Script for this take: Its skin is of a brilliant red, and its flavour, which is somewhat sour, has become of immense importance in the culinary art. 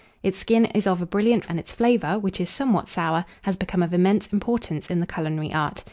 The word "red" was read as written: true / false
false